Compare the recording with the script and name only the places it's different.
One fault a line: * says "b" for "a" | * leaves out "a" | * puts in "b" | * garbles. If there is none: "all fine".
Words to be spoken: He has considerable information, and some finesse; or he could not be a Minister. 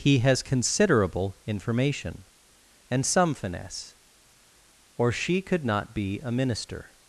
* says "she" for "he"